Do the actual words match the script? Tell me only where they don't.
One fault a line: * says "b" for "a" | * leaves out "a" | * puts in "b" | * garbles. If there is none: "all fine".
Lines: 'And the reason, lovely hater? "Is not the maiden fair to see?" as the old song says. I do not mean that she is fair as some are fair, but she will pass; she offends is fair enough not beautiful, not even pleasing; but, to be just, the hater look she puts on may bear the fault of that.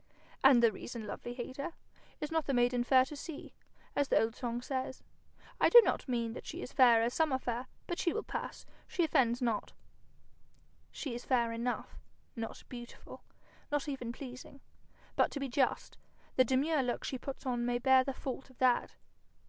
* puts in "not She"
* says "demure" for "hater"